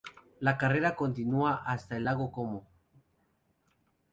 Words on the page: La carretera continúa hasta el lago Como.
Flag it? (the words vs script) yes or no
no